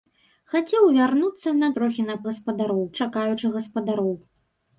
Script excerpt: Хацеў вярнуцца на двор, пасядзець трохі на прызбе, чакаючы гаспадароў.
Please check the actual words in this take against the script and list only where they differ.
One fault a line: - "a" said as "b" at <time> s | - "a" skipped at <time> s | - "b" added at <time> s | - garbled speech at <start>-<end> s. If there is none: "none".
- "двор пасядзець" skipped at 1.7 s
- "прызбе" said as "гаспадароў" at 2.3 s